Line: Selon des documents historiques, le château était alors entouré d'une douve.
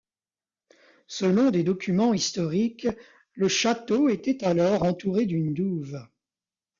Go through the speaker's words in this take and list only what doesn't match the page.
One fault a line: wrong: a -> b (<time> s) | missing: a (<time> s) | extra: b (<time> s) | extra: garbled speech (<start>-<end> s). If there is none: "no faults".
no faults